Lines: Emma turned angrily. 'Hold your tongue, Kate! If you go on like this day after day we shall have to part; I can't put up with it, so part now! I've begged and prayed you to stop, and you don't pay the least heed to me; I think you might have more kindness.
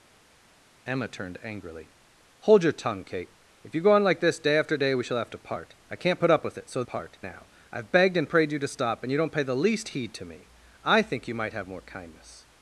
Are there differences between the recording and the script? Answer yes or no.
no